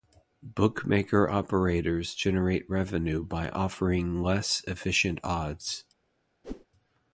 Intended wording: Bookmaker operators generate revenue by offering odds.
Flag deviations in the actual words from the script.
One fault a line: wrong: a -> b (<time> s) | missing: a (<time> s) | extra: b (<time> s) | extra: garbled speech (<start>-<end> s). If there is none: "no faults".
extra: less efficient (4.2 s)